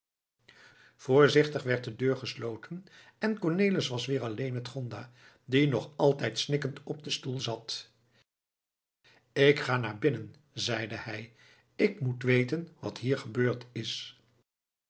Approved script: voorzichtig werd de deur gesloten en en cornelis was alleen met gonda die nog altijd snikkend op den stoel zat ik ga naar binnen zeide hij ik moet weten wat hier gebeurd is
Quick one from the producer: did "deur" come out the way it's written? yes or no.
yes